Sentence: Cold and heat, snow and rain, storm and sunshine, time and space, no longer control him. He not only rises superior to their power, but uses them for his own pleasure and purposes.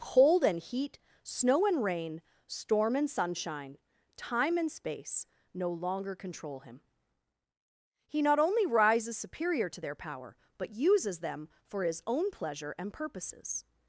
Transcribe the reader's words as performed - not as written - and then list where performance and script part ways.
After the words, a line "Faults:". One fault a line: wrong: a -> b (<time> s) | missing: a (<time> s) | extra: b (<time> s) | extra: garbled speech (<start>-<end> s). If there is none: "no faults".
Cold and heat, snow and rain, storm and sunshine, time and space, no longer control him. He not only rises superior to their power, but uses them for his own pleasure and purposes.
Faults:
no faults